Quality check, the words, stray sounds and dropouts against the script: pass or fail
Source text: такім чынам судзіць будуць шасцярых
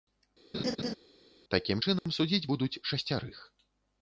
fail